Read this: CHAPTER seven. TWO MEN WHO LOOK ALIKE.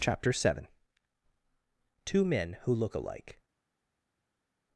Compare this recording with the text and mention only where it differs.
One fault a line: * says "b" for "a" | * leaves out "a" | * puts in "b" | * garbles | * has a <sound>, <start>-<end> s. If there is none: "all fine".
all fine